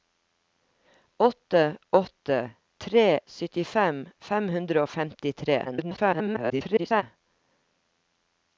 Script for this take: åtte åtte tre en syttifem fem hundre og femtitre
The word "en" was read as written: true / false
false